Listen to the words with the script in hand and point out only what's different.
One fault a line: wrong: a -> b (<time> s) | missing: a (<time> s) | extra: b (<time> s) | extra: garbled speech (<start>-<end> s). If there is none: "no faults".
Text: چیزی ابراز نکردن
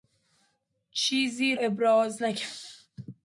no faults